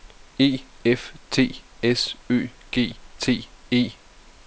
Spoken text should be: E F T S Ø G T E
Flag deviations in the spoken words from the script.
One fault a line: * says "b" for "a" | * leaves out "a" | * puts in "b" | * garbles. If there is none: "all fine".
all fine